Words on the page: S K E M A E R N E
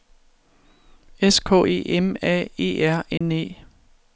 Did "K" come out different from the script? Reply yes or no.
no